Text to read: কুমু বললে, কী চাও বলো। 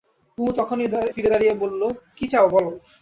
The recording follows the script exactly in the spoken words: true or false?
false